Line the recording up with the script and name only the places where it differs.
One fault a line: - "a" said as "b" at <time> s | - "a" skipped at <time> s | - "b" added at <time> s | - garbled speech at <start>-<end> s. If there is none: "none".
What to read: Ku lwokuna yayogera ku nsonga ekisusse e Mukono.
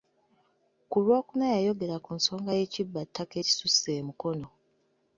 - "y'ekibbattaka" added at 2.6 s